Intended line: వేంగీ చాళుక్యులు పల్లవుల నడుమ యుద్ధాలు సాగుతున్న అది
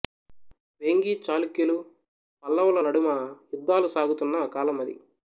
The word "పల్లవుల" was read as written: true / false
true